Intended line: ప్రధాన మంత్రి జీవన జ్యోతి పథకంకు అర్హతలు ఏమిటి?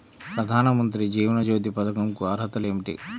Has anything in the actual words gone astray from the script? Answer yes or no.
no